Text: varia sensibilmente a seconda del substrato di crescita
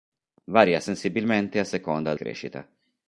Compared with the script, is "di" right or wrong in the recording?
wrong